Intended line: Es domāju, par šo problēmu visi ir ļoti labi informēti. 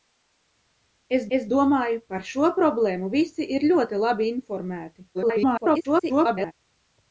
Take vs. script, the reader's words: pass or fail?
fail